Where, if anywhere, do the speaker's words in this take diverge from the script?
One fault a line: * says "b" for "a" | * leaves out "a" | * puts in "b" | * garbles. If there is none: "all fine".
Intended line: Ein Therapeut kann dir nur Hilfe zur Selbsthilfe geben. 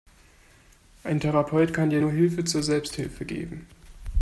all fine